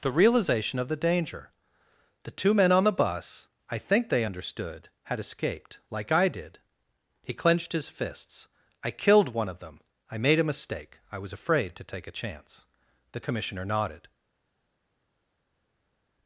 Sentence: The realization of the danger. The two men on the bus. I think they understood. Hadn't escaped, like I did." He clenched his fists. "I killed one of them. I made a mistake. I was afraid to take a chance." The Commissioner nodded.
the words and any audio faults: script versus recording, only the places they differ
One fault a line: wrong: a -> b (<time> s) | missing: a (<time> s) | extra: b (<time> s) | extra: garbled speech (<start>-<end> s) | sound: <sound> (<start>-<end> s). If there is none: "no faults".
wrong: Hadn't -> Had (5.0 s)